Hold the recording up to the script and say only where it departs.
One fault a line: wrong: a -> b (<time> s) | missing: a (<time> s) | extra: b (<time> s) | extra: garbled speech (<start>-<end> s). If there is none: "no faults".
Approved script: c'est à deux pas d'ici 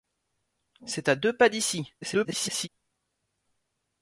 extra: garbled speech (2.0-2.7 s)